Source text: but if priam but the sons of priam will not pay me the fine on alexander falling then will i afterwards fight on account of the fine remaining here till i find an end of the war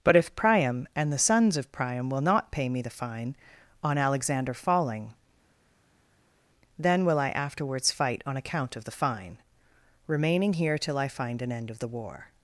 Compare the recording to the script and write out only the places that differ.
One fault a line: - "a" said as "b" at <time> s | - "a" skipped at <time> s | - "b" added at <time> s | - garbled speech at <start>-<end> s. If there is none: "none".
- "but" said as "and" at 0.9 s